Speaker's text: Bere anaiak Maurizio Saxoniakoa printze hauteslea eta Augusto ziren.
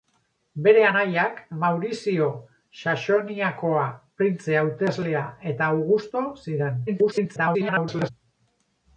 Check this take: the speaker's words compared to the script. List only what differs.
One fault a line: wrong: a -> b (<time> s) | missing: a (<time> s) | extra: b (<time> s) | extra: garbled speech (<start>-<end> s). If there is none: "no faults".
extra: garbled speech (6.9-8.1 s)